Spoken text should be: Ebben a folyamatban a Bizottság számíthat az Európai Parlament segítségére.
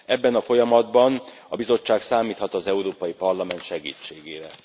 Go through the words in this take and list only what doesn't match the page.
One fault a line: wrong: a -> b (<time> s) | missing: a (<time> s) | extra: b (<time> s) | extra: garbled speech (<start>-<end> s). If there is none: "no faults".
no faults